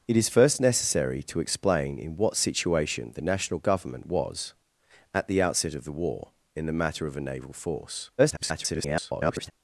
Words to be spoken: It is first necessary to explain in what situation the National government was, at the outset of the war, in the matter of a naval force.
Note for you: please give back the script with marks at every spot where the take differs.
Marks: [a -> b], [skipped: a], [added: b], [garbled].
It is first necessary to explain in what situation the National government was, at the outset of the war, in the matter of a naval force. [garbled]